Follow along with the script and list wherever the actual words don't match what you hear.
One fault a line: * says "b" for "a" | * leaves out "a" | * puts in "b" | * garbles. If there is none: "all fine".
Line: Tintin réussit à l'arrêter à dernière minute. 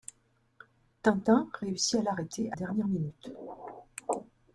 all fine